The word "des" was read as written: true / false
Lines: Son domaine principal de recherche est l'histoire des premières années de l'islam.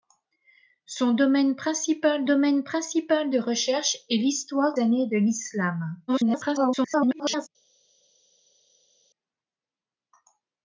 false